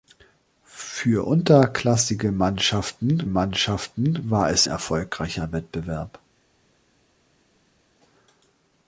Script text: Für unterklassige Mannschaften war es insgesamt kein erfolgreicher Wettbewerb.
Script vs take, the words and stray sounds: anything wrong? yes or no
yes